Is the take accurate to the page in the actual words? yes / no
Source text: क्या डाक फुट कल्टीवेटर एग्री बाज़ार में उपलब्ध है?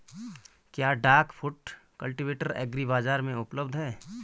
yes